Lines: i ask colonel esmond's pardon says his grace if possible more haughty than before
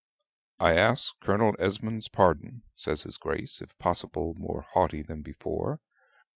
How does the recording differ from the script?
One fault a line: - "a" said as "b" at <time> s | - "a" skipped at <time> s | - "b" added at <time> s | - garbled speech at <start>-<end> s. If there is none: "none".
none